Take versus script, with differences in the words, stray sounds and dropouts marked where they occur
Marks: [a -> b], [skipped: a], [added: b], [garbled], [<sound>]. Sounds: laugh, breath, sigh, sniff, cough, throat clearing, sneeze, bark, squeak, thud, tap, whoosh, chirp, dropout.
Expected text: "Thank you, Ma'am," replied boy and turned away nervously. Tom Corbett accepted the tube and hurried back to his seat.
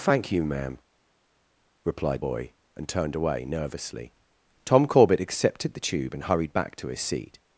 "Thank you, Ma'am," replied boy and turned away nervously. Tom Corbett accepted the tube and hurried back to his seat.